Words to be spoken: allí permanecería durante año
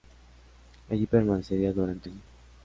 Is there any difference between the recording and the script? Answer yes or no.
no